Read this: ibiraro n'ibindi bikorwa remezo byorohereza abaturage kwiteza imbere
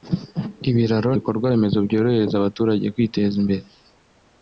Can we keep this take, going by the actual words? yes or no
no